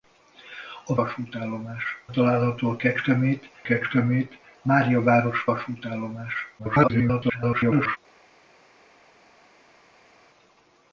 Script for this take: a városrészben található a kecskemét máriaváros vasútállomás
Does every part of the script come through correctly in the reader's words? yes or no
no